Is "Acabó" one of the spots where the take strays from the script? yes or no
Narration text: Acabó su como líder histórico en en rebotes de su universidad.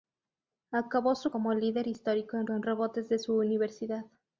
no